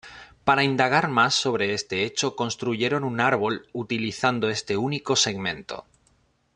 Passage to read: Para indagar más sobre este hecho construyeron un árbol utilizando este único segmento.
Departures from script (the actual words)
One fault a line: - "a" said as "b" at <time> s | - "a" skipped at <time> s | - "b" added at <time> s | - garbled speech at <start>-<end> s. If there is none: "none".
none